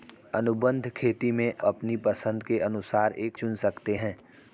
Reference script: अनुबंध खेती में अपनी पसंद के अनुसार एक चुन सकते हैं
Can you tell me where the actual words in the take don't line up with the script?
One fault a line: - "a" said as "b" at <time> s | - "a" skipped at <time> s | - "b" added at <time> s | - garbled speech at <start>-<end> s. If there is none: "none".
none